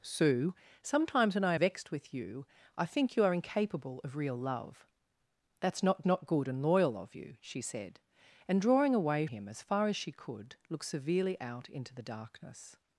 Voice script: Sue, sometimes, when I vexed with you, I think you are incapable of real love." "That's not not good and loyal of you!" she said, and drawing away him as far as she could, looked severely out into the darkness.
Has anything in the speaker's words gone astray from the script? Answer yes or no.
no